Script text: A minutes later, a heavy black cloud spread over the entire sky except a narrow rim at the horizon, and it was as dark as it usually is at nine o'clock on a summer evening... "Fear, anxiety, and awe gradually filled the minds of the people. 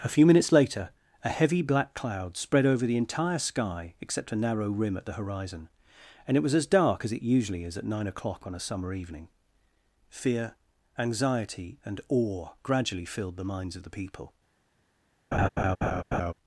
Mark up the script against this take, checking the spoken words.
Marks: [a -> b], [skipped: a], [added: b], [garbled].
A [added: few] minutes later, a heavy black cloud spread over the entire sky except a narrow rim at the horizon, and it was as dark as it usually is at nine o'clock on a summer evening... "Fear, anxiety, and awe gradually filled the minds of the people.